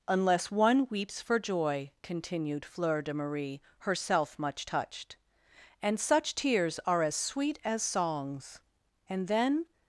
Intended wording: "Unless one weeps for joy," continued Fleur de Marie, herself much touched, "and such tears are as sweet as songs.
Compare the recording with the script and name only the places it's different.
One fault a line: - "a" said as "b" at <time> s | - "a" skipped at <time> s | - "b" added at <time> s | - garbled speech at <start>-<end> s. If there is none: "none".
- "And then" added at 9.1 s